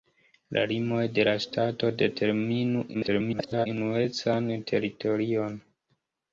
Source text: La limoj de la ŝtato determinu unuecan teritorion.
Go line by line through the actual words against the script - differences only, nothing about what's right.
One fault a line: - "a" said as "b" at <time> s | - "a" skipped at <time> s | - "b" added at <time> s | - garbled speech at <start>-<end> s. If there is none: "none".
- garbled speech at 2.9-3.7 s